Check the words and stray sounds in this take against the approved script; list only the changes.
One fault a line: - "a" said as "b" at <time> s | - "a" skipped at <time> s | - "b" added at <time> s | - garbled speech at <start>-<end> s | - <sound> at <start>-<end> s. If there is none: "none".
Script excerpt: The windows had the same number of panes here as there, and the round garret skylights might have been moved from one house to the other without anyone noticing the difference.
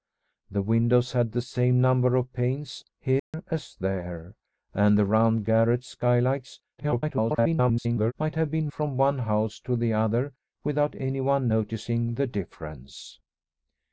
- dropout at 3.2-3.3 s
- garbled speech at 6.8-8.1 s
- "moved" skipped at 8.7 s